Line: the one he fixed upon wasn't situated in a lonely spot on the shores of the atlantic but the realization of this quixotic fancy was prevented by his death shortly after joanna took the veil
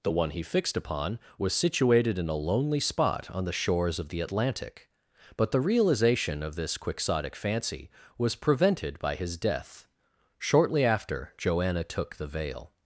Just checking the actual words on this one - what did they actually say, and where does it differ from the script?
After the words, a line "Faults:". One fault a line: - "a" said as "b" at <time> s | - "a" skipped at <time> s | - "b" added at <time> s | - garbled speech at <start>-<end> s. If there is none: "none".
the one he fixed upon was situated in a lonely spot on the shores of the atlantic but the realization of this quixotic fancy was prevented by his death shortly after joanna took the veil
Faults:
- "wasn't" said as "was" at 1.4 s